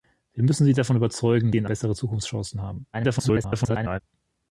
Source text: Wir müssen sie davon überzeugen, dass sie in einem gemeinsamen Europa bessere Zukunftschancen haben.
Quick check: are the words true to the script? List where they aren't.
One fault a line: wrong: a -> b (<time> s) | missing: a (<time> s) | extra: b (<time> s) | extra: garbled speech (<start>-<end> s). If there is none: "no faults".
missing: dass (1.5 s)
missing: einem gemeinsamen Europa (1.6 s)
extra: garbled speech (2.9-4.0 s)